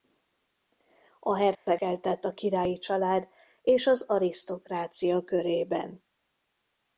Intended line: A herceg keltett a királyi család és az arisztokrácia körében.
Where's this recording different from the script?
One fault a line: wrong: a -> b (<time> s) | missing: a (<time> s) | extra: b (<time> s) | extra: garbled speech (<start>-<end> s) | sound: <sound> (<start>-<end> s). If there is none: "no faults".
sound: dropout (1.5-1.7 s)